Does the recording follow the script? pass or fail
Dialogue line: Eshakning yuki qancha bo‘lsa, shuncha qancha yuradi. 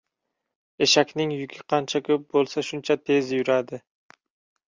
fail